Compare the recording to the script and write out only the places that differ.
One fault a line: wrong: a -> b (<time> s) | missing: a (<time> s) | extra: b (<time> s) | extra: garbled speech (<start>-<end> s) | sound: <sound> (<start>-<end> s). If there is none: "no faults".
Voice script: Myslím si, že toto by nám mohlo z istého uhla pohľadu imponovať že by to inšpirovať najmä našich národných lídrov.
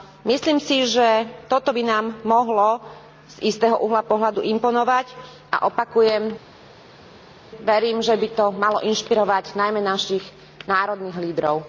extra: a opakujem verím (5.5 s)
extra: malo (8.5 s)